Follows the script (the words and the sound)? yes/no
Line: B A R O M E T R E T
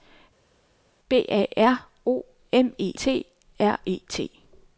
yes